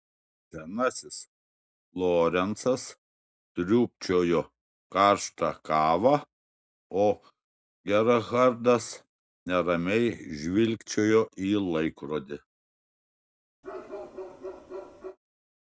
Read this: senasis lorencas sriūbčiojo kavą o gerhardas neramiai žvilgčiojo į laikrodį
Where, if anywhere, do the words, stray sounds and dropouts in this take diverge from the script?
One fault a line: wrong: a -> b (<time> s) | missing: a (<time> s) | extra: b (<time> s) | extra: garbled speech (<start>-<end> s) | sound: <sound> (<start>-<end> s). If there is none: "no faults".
extra: karštą (5.0 s)
sound: bark (13.6-15.2 s)